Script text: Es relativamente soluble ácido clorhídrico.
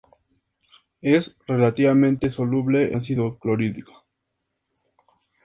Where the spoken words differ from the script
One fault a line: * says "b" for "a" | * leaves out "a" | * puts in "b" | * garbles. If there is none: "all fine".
all fine